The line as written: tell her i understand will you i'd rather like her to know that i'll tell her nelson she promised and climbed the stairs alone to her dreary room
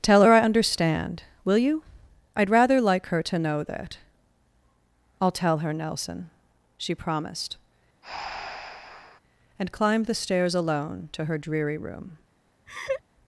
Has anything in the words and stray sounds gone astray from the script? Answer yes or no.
yes